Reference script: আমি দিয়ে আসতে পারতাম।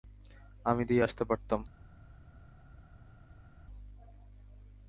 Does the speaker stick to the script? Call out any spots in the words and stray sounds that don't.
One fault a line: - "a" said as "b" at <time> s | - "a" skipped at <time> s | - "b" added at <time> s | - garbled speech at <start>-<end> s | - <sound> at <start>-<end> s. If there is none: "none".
none